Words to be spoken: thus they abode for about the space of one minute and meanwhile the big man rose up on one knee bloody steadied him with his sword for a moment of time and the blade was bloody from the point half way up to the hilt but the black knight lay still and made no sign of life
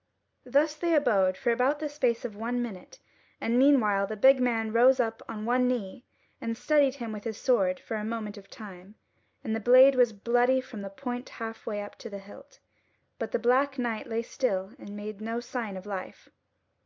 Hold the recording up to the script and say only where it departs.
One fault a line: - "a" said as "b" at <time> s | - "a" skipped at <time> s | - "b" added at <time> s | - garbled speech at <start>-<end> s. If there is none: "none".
- "bloody" said as "and" at 6.4 s